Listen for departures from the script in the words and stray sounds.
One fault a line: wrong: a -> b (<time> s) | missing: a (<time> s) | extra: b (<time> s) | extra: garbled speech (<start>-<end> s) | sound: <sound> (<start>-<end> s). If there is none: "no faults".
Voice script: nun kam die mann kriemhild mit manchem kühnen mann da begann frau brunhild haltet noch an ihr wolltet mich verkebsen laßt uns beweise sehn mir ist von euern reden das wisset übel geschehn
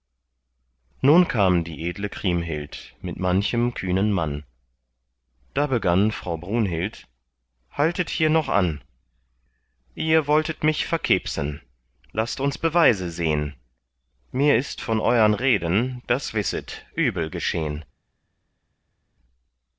wrong: mann -> edle (1.9 s)
extra: hier (8.1 s)